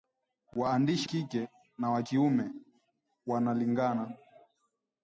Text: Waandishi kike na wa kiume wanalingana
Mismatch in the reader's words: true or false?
false